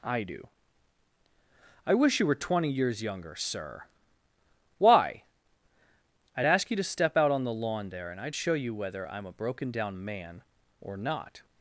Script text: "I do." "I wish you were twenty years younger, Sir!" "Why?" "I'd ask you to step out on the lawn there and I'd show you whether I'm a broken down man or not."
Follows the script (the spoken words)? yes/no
yes